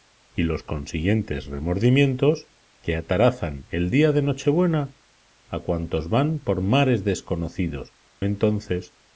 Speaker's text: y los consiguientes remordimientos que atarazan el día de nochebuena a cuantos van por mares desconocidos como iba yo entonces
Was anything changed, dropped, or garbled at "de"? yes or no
no